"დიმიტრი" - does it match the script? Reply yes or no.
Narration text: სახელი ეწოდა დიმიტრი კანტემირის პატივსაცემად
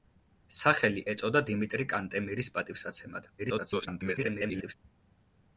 yes